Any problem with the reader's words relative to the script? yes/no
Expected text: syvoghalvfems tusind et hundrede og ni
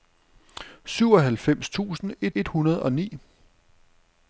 yes